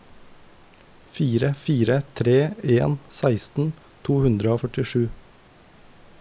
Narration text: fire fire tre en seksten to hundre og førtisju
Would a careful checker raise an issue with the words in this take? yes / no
no